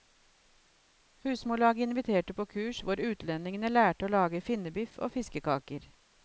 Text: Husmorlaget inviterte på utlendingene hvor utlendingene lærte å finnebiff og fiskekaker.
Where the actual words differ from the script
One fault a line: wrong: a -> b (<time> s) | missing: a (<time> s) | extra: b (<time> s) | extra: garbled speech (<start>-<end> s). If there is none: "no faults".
wrong: utlendingene -> kurs (2.5 s)
extra: lage (4.2 s)